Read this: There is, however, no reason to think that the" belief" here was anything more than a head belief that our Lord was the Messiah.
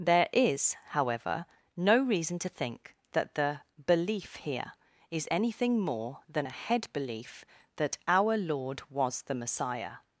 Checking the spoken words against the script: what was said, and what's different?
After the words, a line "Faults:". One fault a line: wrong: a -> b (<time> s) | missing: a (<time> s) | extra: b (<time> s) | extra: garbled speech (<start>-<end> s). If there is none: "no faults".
There is, however, no reason to think that the" belief" here is anything more than a head belief that our Lord was the Messiah.
Faults:
wrong: was -> is (5.1 s)